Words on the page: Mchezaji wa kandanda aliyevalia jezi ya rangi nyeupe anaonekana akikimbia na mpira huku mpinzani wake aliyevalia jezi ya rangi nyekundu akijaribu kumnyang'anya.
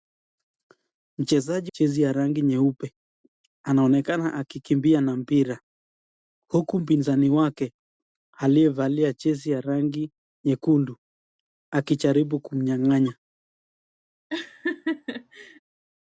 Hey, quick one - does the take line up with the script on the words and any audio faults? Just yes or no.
no